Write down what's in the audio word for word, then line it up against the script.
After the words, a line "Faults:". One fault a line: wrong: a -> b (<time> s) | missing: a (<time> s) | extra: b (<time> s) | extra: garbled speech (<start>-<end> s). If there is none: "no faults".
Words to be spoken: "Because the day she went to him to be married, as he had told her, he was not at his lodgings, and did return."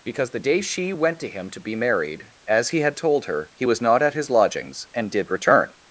"Because the day she went to him to be married, as he had told her, he was not at his lodgings, and did return."
Faults:
no faults